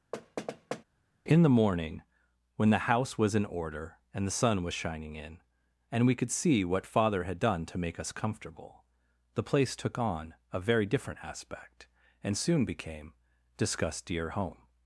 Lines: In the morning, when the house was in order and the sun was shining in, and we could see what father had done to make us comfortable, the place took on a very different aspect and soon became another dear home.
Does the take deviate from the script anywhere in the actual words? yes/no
yes